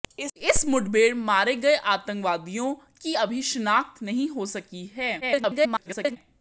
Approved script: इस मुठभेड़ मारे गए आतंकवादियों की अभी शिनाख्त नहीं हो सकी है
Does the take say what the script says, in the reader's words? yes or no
no